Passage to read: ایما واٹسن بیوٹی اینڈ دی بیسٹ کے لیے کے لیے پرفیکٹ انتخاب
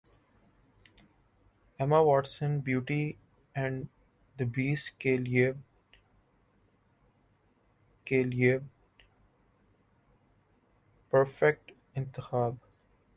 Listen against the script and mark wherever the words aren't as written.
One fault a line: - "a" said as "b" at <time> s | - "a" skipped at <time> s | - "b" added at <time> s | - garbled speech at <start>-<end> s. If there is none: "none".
none